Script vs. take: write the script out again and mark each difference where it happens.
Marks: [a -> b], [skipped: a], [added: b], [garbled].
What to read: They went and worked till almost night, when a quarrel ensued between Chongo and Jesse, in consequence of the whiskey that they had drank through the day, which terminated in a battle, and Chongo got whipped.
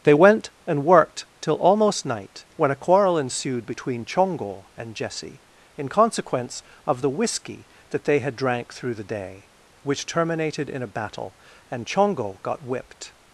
They went and worked till almost night, when a quarrel ensued between Chongo and Jesse, in consequence of the whiskey that they had drank through the day, which terminated in a battle, and Chongo got whipped.